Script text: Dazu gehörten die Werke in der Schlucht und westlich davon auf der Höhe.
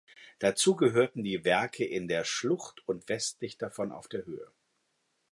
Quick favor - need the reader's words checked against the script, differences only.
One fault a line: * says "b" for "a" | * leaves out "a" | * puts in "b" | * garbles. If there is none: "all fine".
all fine